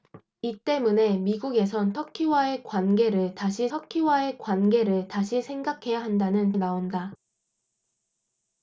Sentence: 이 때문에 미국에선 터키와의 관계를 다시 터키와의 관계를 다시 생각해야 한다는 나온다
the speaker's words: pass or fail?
pass